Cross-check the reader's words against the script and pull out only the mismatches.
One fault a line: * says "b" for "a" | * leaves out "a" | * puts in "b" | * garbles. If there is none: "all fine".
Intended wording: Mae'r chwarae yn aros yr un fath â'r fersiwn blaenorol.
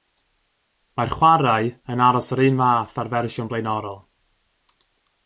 all fine